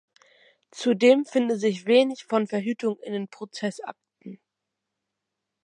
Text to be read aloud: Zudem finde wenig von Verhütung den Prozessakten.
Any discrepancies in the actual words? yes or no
yes